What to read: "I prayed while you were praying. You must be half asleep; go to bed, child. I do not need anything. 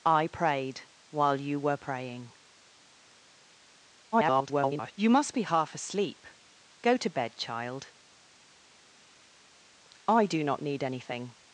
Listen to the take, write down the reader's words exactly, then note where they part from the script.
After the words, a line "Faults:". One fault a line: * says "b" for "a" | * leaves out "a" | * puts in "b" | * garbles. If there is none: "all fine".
"I prayed while you were praying. [garbled] You must be half asleep; go to bed, child. I do not need anything.
Faults:
* garbles